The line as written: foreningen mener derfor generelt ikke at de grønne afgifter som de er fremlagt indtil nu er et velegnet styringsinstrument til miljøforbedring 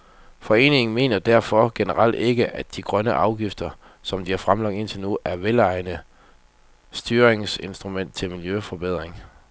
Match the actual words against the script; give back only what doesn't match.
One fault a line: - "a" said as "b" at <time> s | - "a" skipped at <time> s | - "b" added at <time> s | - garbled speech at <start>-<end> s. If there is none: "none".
none